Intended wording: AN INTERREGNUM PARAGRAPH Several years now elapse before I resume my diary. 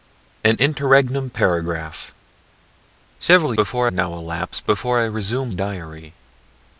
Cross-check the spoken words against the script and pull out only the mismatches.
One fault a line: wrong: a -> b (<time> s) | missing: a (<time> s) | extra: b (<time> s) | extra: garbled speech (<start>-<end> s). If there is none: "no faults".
wrong: years -> before (3.5 s)
missing: my (5.5 s)